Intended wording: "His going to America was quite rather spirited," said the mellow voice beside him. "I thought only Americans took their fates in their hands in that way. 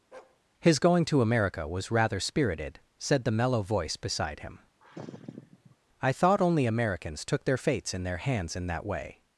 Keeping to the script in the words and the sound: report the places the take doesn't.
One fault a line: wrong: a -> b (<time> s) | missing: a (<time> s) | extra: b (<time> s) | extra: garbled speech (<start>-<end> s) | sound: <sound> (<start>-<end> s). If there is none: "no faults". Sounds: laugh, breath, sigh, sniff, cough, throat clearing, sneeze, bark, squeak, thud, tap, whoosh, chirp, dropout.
sound: bark (0.1-0.4 s)
missing: quite (1.9 s)
sound: sigh (4.8-5.8 s)